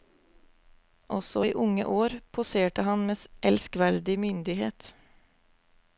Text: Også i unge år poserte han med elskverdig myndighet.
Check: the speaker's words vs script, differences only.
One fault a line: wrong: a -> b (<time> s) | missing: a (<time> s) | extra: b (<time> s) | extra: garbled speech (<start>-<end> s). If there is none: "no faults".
no faults